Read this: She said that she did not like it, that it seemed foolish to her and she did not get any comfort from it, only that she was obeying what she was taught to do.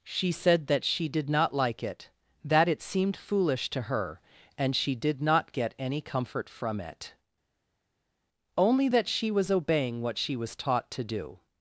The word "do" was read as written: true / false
true